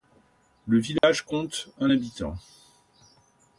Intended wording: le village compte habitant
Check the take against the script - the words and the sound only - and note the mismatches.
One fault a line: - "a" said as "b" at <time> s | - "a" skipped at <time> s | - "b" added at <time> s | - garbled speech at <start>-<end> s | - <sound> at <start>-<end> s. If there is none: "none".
- dropout at 1.0-1.0 s
- "un" added at 1.8 s